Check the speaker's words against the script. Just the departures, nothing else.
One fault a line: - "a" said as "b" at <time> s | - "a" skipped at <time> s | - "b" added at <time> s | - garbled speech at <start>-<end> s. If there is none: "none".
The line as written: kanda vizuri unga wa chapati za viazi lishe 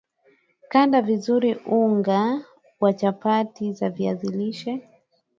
none